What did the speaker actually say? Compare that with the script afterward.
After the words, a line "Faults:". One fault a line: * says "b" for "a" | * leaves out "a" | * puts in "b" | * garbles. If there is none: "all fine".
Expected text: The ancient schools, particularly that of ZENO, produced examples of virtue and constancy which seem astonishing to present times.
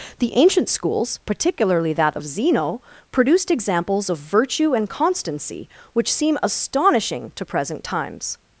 The ancient schools, particularly that of ZENO, produced examples of virtue and constancy which seem astonishing to present times.
Faults:
all fine